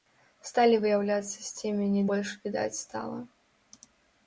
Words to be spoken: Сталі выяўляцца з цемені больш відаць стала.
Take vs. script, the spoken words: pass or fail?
pass